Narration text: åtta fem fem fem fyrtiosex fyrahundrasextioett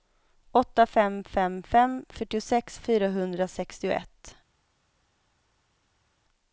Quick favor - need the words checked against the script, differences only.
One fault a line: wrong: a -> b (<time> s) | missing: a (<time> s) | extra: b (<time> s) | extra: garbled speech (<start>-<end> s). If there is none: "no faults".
no faults